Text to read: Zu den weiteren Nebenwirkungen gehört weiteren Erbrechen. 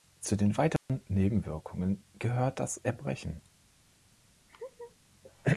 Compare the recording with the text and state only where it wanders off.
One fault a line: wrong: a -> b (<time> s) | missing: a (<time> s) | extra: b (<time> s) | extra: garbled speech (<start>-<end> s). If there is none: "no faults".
wrong: weiteren -> das (2.6 s)